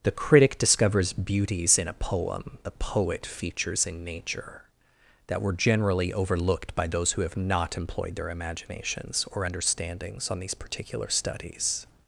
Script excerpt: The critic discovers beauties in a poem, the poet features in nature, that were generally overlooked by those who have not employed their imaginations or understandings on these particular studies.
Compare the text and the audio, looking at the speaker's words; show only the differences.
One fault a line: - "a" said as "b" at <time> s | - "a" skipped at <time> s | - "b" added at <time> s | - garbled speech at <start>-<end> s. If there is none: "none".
none